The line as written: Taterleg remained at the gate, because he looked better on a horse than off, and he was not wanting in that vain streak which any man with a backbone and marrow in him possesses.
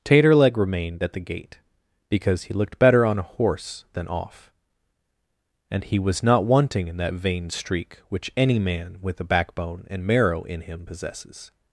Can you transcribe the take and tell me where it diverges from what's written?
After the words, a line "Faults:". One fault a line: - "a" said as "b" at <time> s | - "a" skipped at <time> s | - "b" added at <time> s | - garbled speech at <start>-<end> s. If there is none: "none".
Taterleg remained at the gate, because he looked better on a horse than off, and he was not wanting in that vain streak which any man with a backbone and marrow in him possesses.
Faults:
none